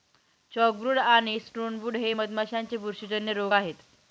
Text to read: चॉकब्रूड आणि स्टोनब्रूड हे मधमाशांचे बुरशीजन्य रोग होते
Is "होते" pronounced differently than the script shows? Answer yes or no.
yes